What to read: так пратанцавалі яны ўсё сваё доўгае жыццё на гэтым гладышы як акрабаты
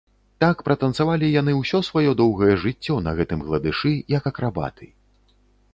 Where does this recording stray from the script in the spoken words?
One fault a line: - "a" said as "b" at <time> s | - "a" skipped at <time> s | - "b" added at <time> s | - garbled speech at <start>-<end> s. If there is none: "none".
none